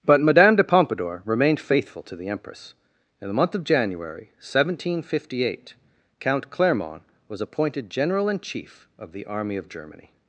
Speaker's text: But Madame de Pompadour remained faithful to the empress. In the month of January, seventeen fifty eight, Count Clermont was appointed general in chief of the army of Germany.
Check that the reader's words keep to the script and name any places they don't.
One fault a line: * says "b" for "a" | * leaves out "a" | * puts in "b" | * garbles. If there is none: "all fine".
all fine